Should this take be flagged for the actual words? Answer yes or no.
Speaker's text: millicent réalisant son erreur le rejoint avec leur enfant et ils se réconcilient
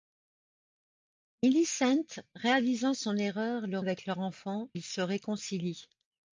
yes